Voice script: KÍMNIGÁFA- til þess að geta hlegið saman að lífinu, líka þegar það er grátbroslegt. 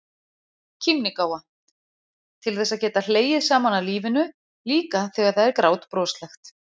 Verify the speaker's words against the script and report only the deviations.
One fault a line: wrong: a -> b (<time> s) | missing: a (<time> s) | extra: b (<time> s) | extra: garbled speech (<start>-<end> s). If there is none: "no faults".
no faults